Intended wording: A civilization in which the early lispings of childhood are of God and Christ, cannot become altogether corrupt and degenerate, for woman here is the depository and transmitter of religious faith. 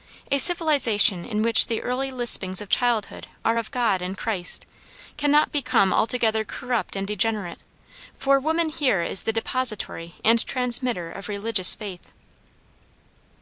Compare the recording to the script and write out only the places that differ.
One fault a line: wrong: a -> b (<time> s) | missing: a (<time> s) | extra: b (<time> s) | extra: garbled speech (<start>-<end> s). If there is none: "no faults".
no faults